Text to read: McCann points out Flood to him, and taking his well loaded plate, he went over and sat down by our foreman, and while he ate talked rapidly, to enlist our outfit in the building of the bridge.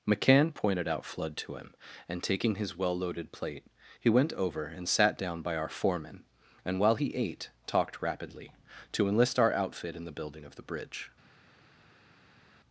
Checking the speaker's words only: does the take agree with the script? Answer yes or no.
no